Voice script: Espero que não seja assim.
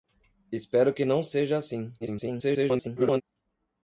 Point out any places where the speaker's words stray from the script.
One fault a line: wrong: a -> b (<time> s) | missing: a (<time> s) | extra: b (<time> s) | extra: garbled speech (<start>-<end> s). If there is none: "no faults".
extra: garbled speech (2.0-3.2 s)